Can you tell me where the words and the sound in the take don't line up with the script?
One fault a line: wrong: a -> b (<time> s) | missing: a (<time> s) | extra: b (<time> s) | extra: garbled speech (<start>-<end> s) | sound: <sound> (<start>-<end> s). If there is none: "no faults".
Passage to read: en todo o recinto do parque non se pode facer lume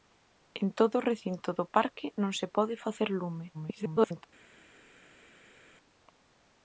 extra: garbled speech (3.5-4.3 s)